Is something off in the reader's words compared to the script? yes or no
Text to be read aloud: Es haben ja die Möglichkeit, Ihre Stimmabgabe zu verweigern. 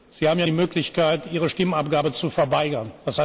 yes